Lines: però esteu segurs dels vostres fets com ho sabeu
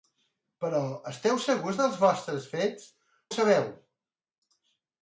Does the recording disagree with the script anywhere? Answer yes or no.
yes